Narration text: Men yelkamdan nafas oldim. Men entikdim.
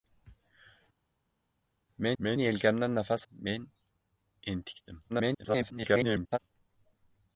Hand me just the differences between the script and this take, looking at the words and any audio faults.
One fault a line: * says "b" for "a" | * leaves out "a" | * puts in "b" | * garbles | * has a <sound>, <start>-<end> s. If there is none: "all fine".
* puts in "men"
* leaves out "oldim"
* garbles